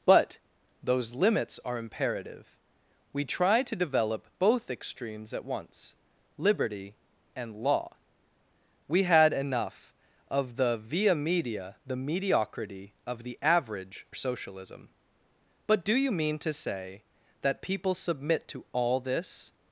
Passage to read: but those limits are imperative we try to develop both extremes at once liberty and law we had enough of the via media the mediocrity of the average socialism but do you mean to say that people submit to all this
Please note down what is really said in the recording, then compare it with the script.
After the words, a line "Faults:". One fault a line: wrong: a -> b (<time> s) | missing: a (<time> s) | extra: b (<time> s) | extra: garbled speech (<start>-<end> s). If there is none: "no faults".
but those limits are imperative we try to develop both extremes at once liberty and law we had enough of the via media the mediocrity of the average socialism but do you mean to say that people submit to all this
Faults:
no faults